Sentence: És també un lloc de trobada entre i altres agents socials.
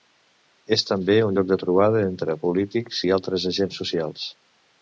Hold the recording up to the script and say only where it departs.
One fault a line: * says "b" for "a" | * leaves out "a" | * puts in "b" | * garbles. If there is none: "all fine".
* puts in "polítics"